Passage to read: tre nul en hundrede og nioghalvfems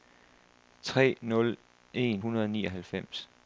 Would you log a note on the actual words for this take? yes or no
no